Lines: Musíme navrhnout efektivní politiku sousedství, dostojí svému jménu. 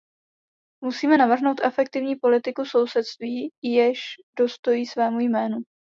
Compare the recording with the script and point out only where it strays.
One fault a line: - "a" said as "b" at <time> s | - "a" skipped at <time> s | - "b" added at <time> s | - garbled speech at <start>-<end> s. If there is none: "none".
- "jež" added at 3.6 s